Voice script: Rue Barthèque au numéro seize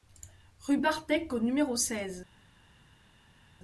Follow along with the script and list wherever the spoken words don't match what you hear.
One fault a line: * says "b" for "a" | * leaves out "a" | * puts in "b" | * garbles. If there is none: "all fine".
all fine